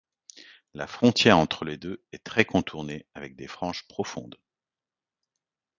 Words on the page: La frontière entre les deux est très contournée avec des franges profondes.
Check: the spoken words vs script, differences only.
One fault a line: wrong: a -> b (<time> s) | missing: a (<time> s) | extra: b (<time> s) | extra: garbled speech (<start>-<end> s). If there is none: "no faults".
no faults